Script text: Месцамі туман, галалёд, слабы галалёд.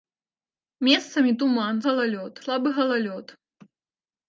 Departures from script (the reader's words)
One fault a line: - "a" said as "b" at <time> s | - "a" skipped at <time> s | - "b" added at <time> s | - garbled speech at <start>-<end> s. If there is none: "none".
none